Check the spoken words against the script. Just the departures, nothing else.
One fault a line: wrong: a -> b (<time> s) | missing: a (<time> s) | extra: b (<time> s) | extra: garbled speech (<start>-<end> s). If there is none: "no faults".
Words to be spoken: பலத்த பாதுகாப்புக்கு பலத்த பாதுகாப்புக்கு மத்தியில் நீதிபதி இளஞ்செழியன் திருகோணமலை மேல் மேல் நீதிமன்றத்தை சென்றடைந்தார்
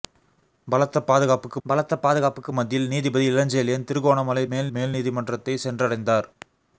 no faults